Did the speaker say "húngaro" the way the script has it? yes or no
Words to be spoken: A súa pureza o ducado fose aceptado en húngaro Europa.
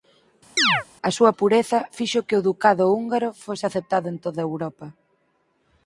no